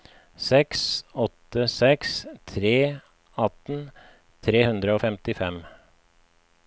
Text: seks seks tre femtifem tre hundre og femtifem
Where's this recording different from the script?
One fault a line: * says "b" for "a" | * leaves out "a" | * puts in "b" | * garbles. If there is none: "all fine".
* puts in "åtte"
* says "atten" for "femtifem"